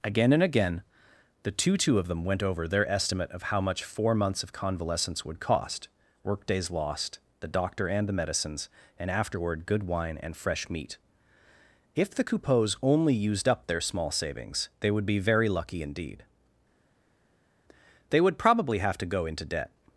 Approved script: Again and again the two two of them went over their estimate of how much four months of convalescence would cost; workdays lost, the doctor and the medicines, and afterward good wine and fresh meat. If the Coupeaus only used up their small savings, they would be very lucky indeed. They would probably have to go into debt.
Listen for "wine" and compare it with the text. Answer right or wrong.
right